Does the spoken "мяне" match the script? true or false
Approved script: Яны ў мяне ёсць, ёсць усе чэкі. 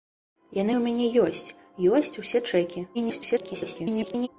true